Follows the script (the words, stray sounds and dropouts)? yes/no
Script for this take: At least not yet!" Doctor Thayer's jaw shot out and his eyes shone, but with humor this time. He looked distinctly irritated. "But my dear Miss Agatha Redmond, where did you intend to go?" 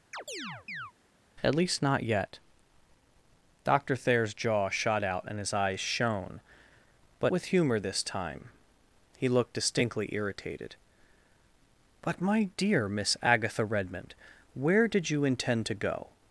no